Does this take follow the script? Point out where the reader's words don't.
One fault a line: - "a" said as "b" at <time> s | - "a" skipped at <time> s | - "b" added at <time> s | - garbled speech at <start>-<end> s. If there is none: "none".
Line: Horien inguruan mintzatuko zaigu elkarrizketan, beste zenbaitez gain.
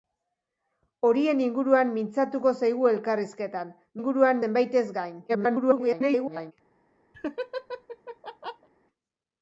- "beste" said as "inguruan" at 4.0 s
- garbled speech at 5.3-6.5 s